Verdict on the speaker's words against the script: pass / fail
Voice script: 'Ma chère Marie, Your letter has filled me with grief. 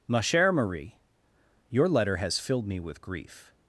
pass